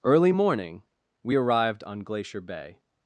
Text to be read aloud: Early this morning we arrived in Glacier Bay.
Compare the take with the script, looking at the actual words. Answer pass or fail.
fail